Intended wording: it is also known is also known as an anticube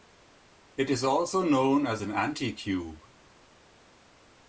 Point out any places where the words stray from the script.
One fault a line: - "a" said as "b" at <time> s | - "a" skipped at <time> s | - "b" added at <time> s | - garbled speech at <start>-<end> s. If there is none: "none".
- "is also known" skipped at 1.9 s